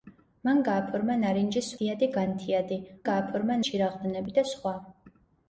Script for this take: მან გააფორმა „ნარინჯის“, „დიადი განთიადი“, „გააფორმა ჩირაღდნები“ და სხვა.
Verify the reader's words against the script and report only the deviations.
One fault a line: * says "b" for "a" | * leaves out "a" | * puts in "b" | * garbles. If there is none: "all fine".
all fine